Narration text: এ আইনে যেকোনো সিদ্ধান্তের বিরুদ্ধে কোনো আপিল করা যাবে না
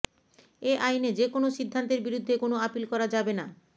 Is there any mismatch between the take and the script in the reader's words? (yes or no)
no